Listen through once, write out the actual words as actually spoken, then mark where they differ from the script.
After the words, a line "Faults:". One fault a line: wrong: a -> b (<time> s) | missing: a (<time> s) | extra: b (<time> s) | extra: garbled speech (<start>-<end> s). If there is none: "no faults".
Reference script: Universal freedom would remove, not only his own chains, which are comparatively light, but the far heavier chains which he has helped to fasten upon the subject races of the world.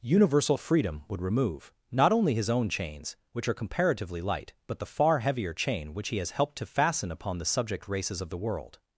Universal freedom would remove, not only his own chains, which are comparatively light, but the far heavier chain which he has helped to fasten upon the subject races of the world.
Faults:
wrong: chains -> chain (5.5 s)